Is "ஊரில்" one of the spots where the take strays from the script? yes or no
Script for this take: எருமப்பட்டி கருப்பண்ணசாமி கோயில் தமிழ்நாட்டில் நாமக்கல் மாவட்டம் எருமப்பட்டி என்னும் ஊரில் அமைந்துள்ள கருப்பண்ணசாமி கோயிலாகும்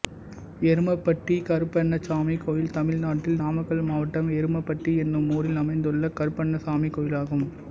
no